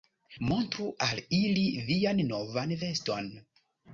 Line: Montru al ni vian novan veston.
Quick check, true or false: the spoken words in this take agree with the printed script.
false